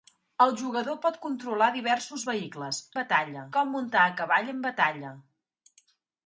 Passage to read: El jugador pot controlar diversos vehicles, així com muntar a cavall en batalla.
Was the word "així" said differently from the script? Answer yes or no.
yes